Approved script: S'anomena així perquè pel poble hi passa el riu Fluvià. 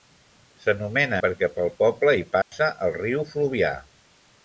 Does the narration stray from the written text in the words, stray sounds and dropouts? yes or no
yes